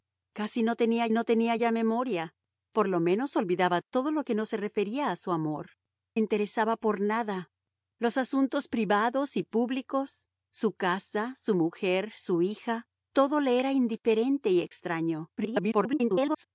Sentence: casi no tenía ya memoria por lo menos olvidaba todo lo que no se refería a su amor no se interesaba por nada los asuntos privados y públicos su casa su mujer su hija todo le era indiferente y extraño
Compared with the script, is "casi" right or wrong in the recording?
right